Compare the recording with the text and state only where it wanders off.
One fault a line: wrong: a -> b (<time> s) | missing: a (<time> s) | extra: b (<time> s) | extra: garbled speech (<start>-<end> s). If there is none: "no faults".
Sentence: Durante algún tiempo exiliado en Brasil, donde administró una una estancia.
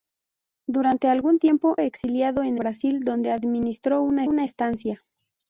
no faults